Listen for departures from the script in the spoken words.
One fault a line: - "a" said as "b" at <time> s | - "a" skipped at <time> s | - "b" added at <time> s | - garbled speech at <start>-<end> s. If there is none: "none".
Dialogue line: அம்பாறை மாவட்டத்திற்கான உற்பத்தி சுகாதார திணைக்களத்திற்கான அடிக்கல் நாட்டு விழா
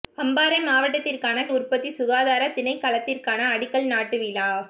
none